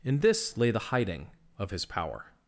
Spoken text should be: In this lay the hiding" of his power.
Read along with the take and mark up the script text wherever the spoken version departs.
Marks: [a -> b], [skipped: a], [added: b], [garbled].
In this lay the hiding" of his power.